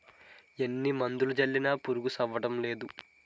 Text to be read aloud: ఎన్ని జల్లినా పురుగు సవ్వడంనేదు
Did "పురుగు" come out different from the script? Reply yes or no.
no